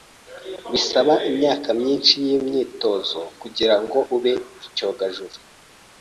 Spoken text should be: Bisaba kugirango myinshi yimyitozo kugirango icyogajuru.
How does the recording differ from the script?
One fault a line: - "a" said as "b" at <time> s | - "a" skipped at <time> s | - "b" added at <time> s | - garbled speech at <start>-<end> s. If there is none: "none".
- "kugirango" said as "imyaka" at 1.3 s
- "ube" added at 4.2 s